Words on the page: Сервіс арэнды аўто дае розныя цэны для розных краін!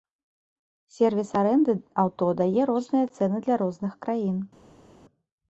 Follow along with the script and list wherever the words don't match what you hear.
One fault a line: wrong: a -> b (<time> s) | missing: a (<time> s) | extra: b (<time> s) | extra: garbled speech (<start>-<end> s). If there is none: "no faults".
no faults